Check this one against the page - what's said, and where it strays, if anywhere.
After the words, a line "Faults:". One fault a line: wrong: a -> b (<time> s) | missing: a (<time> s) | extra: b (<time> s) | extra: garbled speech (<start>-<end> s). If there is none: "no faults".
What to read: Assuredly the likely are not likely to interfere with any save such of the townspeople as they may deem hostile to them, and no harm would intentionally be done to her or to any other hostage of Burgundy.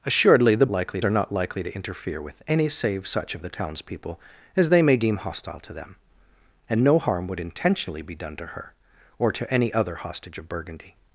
Assuredly the likely are not likely to interfere with any save such of the townspeople as they may deem hostile to them, and no harm would intentionally be done to her or to any other hostage of Burgundy.
Faults:
no faults